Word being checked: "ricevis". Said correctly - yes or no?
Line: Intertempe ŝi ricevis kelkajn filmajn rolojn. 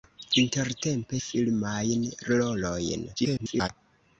no